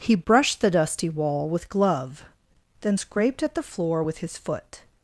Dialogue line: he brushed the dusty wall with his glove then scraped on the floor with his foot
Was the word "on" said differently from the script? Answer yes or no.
yes